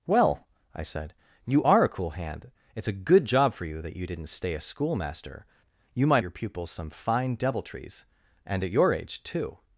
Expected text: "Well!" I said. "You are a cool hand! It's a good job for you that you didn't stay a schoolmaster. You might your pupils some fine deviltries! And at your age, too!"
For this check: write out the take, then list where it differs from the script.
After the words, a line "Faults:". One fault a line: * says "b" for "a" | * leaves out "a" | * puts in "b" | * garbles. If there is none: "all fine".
"Well!" I said. "You are a cool hand! It's a good job for you that you didn't stay a schoolmaster. You might your pupils some fine deviltries! And at your age, too!"
Faults:
all fine